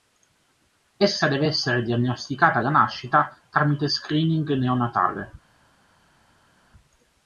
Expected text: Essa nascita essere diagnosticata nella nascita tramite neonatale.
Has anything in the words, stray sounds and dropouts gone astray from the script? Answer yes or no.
yes